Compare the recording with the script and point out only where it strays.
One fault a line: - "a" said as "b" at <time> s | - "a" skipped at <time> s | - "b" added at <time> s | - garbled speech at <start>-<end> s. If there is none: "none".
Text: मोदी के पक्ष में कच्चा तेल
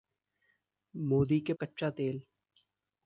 - "पक्ष में" skipped at 1.5 s